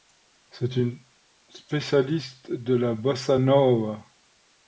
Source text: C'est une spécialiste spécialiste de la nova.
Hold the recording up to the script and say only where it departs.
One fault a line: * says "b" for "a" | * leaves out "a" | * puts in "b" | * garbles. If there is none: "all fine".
* leaves out "spécialiste"
* puts in "bossa"